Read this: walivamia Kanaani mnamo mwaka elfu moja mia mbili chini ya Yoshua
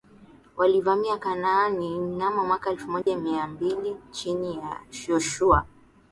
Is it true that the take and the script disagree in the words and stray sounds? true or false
true